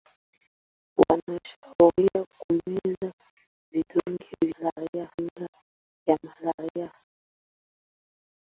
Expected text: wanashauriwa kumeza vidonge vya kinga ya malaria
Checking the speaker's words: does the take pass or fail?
fail